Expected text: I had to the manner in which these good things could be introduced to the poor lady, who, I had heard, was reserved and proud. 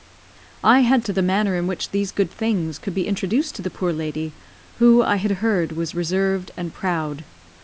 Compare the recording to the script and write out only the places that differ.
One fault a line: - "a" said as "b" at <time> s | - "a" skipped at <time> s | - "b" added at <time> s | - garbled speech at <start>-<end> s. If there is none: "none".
none